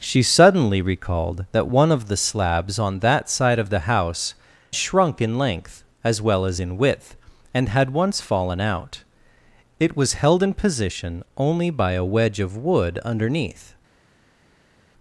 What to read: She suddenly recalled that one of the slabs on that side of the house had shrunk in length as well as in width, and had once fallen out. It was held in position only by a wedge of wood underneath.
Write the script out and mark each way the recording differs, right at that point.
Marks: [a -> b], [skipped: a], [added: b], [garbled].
She suddenly recalled that one of the slabs on that side of the house [skipped: had] shrunk in length as well as in width, and had once fallen out. It was held in position only by a wedge of wood underneath.